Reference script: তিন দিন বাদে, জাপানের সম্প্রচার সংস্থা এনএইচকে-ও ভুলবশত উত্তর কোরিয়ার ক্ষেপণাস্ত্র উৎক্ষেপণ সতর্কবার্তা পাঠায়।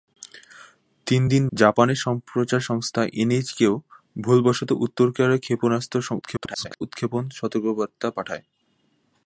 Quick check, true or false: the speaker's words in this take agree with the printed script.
false